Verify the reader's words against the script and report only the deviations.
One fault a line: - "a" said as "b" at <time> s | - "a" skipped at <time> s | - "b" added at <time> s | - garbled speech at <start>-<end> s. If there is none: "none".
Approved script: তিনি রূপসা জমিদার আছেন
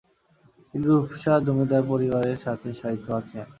- "পরিবারের সাথে শায়িত" added at 1.9 s